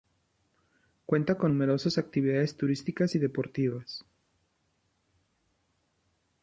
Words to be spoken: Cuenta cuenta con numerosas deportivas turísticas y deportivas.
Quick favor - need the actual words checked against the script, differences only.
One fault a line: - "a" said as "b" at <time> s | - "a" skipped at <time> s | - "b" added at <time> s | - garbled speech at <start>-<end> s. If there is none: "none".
- "cuenta" skipped at 1.4 s
- "deportivas" said as "actividades" at 2.0 s